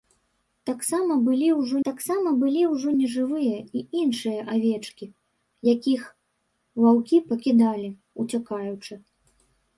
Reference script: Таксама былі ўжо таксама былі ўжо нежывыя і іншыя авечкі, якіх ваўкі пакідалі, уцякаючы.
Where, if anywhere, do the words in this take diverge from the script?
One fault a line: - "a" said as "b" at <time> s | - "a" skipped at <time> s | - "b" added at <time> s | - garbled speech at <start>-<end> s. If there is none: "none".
none